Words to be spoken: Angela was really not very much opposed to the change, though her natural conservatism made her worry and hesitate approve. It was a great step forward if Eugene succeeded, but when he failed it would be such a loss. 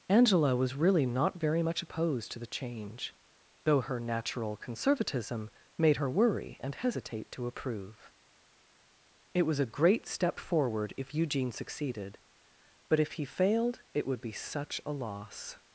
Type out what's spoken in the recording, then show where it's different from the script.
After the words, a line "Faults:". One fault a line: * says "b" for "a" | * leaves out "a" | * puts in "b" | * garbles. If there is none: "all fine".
Angela was really not very much opposed to the change, though her natural conservatism made her worry and hesitate to approve. It was a great step forward if Eugene succeeded, but if he failed it would be such a loss.
Faults:
* puts in "to"
* says "if" for "when"